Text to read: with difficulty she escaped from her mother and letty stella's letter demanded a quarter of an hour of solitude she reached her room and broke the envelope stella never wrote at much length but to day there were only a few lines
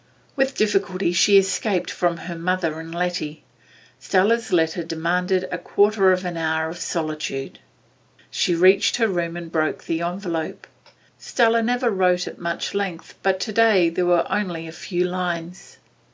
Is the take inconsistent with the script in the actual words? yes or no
no